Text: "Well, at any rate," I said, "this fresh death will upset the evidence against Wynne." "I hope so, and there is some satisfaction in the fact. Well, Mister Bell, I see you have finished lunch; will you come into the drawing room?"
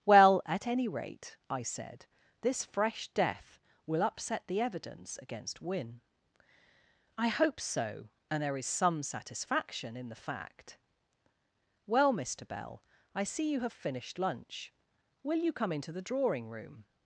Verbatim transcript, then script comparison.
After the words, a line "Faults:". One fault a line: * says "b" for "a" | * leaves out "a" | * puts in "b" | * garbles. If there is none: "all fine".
"Well, at any rate," I said, "this fresh death will upset the evidence against Wynne." "I hope so, and there is some satisfaction in the fact. Well, Mister Bell, I see you have finished lunch; will you come into the drawing room?"
Faults:
all fine